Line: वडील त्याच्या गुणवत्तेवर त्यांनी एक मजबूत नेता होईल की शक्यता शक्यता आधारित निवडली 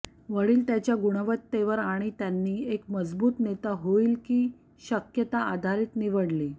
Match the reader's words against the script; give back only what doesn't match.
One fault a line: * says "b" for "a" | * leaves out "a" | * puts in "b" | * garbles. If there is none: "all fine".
* puts in "आणि"
* leaves out "शक्यता"